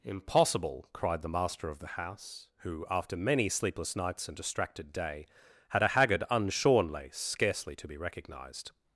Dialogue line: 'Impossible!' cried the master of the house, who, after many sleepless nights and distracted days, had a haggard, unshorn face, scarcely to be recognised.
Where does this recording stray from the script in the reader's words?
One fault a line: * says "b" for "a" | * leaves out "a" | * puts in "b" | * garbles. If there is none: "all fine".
* says "day" for "days"
* says "lace" for "face"